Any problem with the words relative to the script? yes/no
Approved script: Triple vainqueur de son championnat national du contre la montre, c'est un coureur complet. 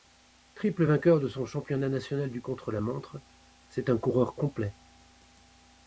no